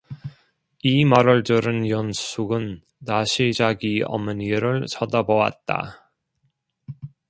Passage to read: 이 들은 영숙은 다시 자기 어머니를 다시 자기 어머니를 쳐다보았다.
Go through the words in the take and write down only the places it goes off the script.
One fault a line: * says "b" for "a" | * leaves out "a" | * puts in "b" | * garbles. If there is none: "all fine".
* puts in "말을"
* leaves out "다시 자기 어머니를"